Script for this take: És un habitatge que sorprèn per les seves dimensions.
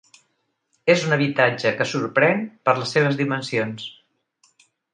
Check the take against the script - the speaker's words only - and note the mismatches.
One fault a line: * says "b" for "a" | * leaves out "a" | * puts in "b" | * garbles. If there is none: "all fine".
all fine